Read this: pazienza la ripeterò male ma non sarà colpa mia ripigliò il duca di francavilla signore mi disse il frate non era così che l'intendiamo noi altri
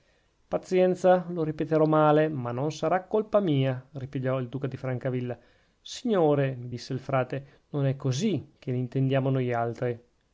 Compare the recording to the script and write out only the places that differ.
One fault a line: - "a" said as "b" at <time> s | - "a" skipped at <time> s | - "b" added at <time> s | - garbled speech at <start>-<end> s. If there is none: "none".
- "la" said as "lo" at 1.3 s
- "era" said as "è" at 7.8 s